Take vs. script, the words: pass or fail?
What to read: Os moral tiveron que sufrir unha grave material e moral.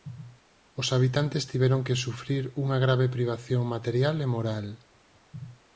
fail